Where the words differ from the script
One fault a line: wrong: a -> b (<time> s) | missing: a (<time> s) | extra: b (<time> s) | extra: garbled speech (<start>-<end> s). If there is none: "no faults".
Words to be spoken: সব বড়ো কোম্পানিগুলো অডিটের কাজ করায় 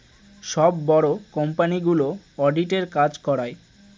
no faults